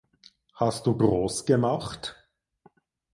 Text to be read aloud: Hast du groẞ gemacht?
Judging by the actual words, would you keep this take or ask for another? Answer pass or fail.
pass